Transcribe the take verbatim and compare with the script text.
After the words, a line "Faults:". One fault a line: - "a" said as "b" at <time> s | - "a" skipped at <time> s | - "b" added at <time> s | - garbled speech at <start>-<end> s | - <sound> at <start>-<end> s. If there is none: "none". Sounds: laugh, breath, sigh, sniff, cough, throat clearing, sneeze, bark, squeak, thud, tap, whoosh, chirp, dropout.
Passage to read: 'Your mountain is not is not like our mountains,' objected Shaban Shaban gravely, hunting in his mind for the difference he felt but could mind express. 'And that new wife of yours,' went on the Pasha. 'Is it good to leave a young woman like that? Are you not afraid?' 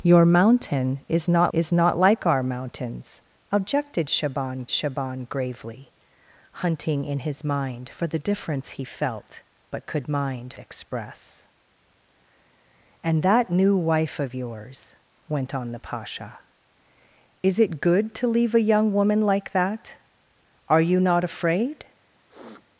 'Your mountain is not is not like our mountains,' objected Shaban Shaban gravely, hunting in his mind for the difference he felt but could mind express. 'And that new wife of yours,' went on the Pasha. 'Is it good to leave a young woman like that? Are you not afraid?'
Faults:
- sniff at 22.3-22.7 s